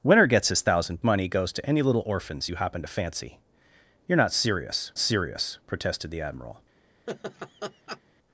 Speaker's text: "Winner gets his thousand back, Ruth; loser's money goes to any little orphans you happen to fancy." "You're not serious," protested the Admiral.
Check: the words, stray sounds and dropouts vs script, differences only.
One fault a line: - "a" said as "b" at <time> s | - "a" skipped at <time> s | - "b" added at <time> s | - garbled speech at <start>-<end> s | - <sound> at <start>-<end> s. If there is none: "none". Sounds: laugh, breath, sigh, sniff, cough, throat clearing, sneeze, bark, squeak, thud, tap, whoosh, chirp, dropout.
- "back Ruth loser's" skipped at 1.0 s
- "serious" added at 5.0 s
- laugh at 7.1-8.0 s